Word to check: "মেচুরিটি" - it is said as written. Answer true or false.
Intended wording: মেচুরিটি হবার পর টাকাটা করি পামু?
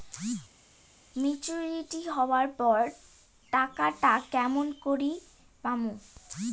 true